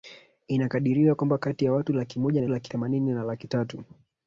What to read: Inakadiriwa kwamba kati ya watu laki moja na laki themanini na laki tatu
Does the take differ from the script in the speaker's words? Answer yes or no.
no